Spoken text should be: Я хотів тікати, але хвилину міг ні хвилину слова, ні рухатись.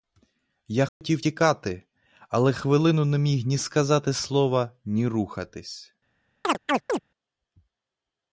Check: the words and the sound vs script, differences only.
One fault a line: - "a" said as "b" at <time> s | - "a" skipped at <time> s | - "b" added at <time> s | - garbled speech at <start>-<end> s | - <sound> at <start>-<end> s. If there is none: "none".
- dropout at 0.9-1.0 s
- "не" added at 3.1 s
- "хвилину" said as "сказати" at 3.6 s
- chirp at 6.4-7.0 s